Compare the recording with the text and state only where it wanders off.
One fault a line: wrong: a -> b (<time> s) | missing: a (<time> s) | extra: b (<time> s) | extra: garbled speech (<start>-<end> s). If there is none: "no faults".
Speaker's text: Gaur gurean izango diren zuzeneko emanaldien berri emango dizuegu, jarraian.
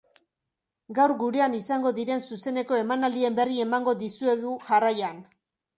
no faults